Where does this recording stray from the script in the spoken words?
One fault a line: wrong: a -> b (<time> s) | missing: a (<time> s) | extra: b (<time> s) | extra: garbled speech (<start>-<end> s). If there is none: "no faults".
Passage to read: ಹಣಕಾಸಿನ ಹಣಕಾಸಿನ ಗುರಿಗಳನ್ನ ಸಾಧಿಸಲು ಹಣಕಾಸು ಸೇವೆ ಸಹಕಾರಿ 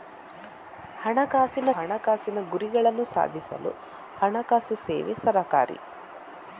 no faults